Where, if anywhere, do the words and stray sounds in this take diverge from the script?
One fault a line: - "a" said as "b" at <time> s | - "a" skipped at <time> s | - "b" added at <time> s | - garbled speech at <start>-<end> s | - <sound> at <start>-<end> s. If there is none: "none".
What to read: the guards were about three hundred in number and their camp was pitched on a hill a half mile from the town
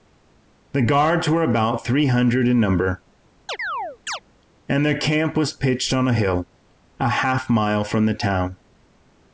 - chirp at 3.5-4.2 s